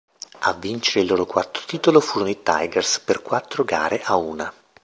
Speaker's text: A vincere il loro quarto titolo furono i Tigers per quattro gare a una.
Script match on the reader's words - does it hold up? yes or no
yes